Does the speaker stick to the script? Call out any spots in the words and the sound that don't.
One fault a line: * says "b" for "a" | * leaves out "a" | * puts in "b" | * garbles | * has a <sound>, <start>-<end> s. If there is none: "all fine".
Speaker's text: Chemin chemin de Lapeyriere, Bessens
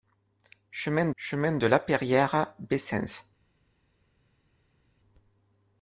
all fine